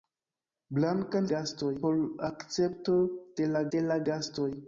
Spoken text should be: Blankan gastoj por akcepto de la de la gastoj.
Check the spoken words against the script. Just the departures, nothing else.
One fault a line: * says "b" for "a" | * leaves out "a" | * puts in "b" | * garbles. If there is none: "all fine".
all fine